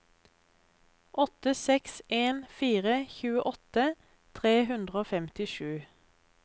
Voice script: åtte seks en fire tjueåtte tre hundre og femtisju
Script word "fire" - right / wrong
right